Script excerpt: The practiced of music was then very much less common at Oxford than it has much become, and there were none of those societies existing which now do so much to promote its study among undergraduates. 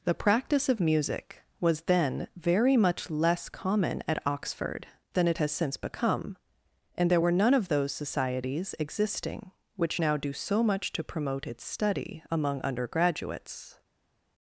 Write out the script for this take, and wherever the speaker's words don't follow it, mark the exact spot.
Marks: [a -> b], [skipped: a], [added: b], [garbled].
The [practiced -> practice] of music was then very much less common at Oxford than it has [much -> since] become, and there were none of those societies existing which now do so much to promote its study among undergraduates.